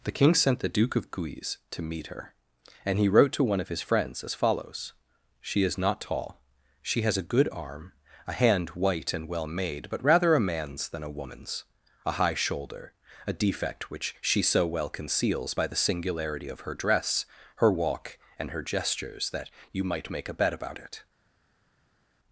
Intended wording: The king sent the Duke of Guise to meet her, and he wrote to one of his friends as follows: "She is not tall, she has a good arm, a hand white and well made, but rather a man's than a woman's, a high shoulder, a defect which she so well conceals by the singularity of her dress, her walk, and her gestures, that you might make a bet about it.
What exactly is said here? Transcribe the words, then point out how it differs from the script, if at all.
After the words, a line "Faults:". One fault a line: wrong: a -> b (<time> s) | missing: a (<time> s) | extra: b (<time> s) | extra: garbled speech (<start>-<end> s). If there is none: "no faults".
The king sent the Duke of Guise to meet her, and he wrote to one of his friends as follows: "She is not tall, she has a good arm, a hand white and well made, but rather a man's than a woman's, a high shoulder, a defect which she so well conceals by the singularity of her dress, her walk, and her gestures, that you might make a bet about it.
Faults:
no faults